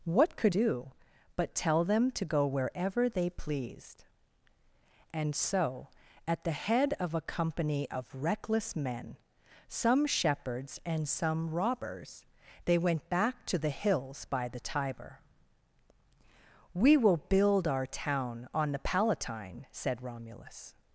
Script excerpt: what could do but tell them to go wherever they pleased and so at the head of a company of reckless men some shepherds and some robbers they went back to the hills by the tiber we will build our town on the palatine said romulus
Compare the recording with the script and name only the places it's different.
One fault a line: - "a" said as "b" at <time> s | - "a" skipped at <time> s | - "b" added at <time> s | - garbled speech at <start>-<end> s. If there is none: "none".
none